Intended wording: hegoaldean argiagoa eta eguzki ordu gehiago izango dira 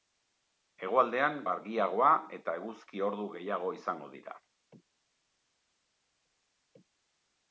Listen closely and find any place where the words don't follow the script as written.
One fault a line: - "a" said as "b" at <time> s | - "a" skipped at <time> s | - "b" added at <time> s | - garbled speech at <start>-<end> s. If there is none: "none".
none